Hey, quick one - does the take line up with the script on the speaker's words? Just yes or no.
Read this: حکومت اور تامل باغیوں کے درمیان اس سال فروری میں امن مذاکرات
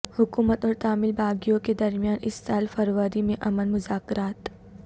yes